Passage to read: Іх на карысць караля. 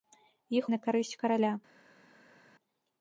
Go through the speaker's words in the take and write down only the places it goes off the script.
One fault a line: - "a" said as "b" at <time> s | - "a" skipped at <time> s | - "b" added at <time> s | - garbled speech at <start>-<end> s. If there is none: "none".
none